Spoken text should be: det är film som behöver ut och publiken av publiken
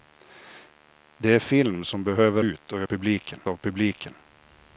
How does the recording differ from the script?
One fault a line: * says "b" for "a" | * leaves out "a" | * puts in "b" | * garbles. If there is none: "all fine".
all fine